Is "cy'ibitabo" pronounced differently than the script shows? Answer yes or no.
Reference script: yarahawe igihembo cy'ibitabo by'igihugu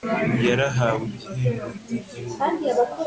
yes